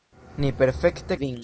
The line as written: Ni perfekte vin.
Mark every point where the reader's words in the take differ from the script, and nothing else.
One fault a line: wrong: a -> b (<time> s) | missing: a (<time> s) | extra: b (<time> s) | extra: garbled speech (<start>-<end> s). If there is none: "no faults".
no faults